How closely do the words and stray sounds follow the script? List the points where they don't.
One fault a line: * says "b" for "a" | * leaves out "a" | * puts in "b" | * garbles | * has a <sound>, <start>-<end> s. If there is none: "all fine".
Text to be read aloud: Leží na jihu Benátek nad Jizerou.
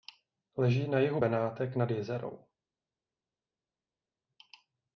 all fine